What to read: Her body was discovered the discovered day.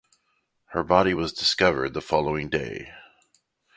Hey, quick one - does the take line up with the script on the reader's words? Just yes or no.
no